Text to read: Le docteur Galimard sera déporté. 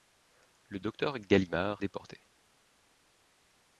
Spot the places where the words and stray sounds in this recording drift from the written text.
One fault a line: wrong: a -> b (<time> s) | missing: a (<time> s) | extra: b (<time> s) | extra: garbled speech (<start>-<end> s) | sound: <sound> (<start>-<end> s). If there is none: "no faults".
missing: sera (1.8 s)